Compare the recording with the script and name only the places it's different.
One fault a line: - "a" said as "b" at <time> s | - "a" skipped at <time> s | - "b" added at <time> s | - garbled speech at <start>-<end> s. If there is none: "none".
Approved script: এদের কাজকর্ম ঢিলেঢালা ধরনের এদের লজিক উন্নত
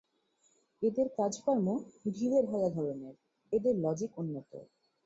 none